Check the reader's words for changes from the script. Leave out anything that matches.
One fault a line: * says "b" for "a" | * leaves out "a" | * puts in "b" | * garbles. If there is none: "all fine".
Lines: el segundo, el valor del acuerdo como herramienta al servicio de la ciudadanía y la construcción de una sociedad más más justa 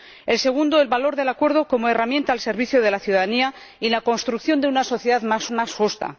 all fine